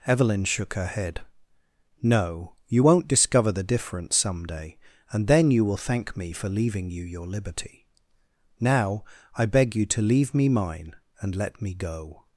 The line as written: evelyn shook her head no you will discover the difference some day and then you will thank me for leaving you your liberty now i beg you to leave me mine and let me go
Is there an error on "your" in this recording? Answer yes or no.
no